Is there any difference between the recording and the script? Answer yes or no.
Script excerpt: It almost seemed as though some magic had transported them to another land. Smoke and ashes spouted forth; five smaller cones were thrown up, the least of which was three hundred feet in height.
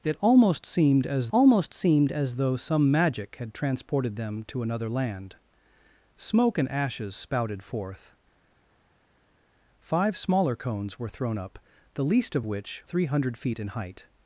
yes